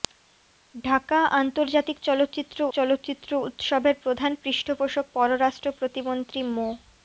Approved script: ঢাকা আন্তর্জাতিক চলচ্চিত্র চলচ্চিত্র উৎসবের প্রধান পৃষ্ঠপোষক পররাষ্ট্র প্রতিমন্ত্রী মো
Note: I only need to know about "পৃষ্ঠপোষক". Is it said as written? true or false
true